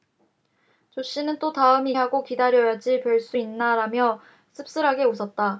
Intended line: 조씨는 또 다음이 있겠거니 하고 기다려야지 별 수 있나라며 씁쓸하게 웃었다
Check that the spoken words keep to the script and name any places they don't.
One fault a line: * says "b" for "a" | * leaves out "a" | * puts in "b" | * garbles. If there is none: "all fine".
* leaves out "있겠거니"